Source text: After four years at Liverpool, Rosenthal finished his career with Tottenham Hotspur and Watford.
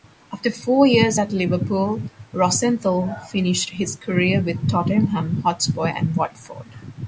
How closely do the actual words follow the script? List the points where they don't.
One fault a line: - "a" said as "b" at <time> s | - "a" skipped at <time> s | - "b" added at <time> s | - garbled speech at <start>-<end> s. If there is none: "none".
none